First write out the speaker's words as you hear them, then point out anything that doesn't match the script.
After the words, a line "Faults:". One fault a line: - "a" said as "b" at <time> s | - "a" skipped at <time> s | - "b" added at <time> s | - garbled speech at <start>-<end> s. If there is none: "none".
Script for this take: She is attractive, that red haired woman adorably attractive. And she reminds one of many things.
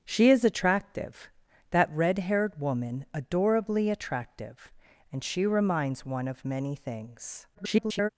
She is attractive, that red haired woman adorably attractive. And she reminds one of many things. [garbled]
Faults:
- garbled speech at 7.5-8.1 s